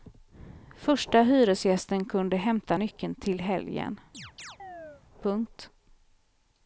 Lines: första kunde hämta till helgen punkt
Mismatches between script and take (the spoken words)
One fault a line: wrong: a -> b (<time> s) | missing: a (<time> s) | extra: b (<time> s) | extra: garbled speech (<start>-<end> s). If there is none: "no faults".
extra: hyresgästen (1.2 s)
extra: nyckeln (2.7 s)